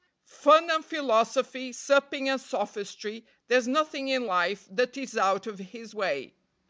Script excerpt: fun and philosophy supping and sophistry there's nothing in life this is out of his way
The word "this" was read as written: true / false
false